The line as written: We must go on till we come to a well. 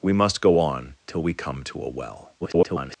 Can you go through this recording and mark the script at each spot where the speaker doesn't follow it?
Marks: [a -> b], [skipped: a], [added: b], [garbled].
We must go on till we come to a well. [garbled]